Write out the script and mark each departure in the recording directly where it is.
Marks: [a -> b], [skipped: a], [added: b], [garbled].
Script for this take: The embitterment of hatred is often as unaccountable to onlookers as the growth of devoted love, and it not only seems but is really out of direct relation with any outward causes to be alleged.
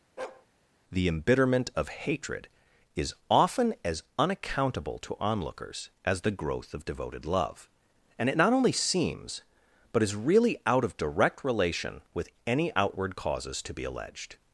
The embitterment of hatred is often as unaccountable to onlookers as the growth of devoted love, and it not only seems but is really out of direct relation with any outward causes to be alleged.